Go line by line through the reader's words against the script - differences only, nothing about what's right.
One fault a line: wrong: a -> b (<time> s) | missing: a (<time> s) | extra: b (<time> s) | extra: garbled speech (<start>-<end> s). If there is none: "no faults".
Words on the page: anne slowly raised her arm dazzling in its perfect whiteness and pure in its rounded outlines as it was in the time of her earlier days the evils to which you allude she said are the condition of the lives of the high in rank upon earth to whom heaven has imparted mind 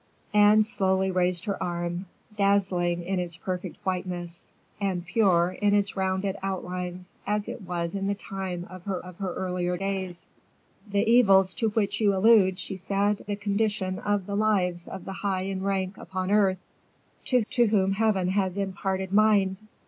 extra: of her (9.0 s)
missing: are (13.2 s)
extra: to (17.5 s)